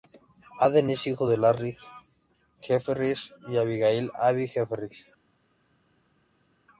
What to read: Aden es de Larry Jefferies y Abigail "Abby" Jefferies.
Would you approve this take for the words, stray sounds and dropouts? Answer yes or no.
no